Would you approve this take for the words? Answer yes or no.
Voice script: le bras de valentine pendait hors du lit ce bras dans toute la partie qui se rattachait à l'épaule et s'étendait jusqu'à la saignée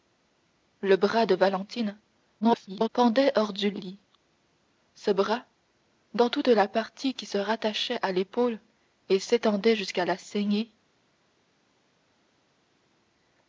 no